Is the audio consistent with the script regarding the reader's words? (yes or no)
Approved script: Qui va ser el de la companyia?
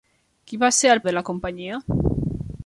yes